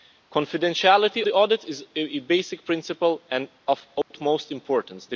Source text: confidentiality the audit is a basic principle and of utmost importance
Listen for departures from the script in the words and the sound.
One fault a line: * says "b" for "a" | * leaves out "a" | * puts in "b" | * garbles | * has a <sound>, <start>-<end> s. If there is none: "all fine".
* has a dropout, 4.0-4.1 s